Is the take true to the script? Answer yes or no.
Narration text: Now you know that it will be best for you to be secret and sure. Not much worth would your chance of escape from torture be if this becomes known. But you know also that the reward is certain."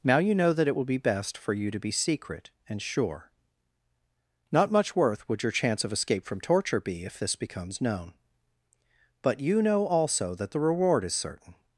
yes